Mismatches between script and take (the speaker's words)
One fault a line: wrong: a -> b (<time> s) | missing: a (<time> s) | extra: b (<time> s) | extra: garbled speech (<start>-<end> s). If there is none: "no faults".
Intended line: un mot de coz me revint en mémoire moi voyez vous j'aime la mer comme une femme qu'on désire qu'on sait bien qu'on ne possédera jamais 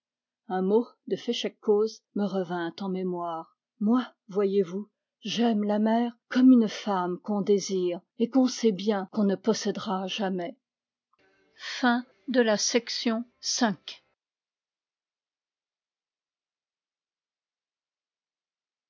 extra: féchec (1.1 s)
extra: et (8.2 s)